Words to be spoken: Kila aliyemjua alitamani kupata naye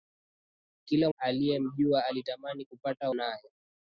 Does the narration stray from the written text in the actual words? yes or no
no